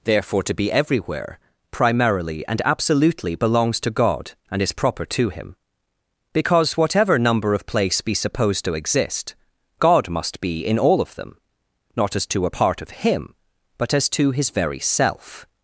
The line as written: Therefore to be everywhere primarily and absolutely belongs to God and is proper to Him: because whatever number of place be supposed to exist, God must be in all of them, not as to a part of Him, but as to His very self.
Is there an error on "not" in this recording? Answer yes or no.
no